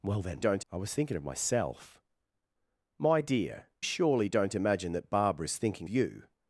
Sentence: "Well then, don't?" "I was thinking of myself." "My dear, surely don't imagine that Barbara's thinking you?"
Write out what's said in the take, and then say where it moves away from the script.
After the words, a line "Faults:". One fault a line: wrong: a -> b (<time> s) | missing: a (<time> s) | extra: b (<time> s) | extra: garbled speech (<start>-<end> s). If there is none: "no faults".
"Well then, don't?" "I was thinking of myself." "My dear, surely don't imagine that Barbara's thinking you?"
Faults:
no faults